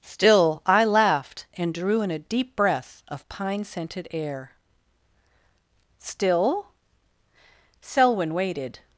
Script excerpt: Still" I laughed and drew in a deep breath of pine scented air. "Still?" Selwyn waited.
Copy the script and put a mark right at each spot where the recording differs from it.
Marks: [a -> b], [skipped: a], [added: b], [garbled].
Still" I laughed and drew in a deep breath of pine scented air. "Still?" Selwyn waited.